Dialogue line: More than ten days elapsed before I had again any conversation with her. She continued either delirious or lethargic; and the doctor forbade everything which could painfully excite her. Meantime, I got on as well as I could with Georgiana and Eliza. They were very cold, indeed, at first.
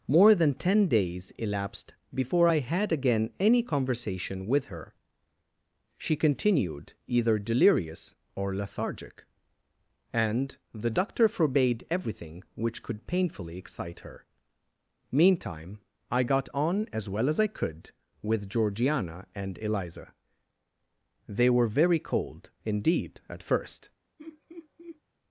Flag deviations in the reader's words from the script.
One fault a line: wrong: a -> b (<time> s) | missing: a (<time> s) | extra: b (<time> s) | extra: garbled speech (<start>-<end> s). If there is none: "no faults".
no faults